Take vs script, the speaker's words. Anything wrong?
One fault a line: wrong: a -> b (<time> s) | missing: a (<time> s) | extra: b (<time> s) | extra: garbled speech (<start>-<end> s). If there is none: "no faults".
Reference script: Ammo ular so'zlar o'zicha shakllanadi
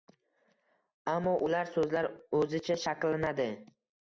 no faults